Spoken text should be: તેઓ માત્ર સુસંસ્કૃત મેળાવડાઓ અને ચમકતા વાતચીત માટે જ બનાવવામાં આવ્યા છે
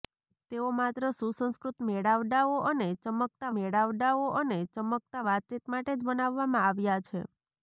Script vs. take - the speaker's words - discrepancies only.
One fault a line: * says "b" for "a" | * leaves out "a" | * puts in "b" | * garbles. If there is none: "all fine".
* puts in "મેળાવડાઓ અને ચમકતા"